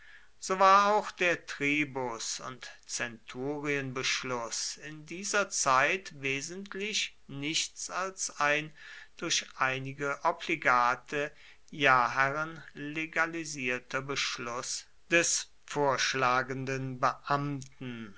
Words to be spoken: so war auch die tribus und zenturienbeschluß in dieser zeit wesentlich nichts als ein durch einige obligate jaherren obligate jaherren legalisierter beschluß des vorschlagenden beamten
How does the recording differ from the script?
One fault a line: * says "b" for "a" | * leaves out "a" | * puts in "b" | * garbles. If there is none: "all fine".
* says "der" for "die"
* leaves out "obligate jaherren"